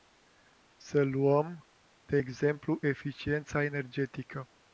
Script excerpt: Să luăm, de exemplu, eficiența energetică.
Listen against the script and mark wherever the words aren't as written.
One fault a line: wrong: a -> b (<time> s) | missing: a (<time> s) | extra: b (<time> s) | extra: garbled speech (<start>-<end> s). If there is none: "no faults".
no faults